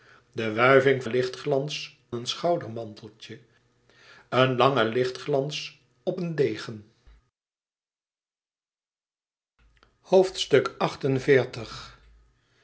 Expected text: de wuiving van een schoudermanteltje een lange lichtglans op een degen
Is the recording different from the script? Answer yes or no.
yes